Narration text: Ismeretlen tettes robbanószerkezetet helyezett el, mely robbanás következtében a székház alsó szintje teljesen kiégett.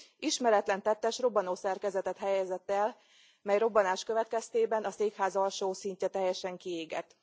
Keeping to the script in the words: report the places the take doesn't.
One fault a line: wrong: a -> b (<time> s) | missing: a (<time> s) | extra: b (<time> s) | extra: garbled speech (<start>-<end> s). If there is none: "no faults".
no faults